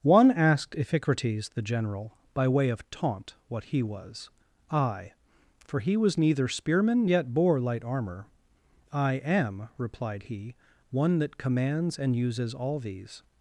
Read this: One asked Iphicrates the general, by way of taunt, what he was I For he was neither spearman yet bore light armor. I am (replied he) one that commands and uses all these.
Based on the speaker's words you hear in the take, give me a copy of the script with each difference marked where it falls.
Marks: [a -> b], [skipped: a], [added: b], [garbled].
One asked Iphicrates the general, by way of taunt, what he was I For he was neither spearman yet bore light armor. I am (replied he) one that commands and uses all these.